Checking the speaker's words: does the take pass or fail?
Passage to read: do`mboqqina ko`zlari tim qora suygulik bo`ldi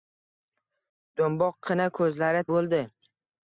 fail